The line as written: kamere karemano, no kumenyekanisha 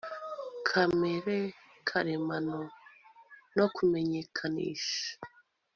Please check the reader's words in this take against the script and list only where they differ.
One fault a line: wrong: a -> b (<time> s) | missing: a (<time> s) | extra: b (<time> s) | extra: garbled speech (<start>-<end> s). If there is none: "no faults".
no faults